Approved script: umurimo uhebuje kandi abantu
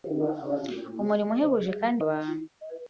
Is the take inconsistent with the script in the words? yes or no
no